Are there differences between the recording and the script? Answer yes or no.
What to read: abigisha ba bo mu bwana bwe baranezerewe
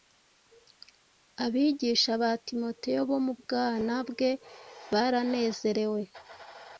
yes